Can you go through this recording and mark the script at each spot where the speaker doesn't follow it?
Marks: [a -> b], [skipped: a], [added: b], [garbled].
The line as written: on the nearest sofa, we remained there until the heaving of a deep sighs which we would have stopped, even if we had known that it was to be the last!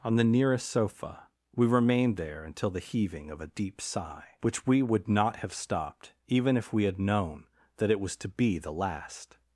on the nearest sofa, we remained there until the heaving of a deep [sighs -> sigh] which we would [added: not] have stopped, even if we had known that it was to be the last!